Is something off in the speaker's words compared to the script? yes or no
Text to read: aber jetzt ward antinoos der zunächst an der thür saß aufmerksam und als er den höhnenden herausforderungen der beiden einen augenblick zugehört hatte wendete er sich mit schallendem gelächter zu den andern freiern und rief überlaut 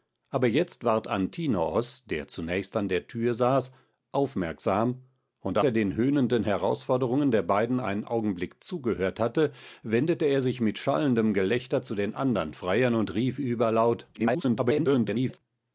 yes